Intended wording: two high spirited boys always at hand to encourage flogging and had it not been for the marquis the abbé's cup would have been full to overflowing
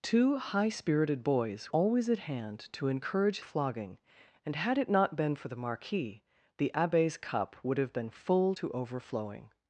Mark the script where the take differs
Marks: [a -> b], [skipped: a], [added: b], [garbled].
two high spirited boys always at hand to encourage flogging and had it not been for the marquis the abbé's cup would have been full to overflowing